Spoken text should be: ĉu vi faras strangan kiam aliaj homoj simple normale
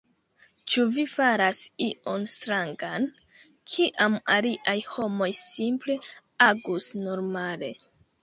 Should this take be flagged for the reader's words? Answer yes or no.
yes